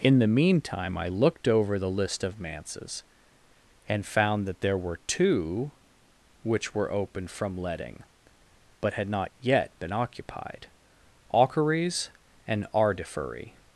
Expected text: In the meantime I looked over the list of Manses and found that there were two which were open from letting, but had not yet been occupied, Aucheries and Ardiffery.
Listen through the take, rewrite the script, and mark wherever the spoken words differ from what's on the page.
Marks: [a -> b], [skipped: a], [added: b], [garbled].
In the meantime I looked over the list of Manses and found that there were two which were open from letting, but had not yet been occupied, Aucheries and Ardiffery.